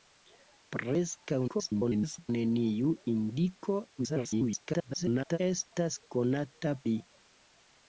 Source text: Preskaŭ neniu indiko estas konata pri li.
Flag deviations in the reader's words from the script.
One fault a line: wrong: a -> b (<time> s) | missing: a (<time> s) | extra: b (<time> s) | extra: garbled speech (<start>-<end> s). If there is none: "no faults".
extra: garbled speech (1.5-2.3 s)
extra: garbled speech (4.0-5.4 s)
missing: pri (6.7 s)